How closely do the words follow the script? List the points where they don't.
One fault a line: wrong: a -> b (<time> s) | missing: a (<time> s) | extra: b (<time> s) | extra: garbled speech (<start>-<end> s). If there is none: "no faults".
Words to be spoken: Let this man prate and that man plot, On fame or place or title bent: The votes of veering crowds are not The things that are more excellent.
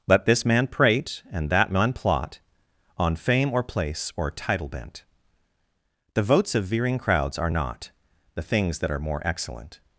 no faults